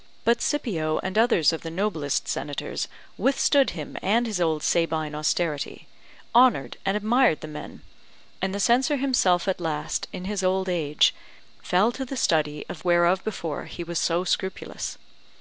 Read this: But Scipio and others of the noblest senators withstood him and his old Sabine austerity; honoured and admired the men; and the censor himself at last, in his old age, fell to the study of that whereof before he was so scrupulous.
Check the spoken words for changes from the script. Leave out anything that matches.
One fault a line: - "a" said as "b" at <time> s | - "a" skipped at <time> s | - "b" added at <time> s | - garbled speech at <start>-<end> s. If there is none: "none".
- "that" skipped at 12.8 s